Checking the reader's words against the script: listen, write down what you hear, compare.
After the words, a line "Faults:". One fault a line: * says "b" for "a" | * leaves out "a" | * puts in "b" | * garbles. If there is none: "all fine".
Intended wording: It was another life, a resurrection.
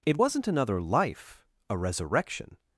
It wasn't another life, a resurrection.
Faults:
* says "wasn't" for "was"